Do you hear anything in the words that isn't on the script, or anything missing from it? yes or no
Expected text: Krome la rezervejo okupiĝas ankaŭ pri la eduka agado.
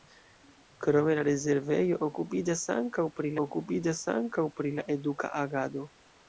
yes